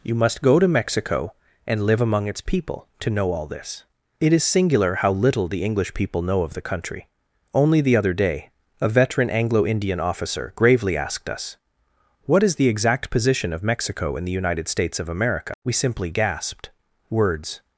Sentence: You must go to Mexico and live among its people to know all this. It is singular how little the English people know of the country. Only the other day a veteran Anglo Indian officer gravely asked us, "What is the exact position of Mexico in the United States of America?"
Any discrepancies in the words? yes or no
yes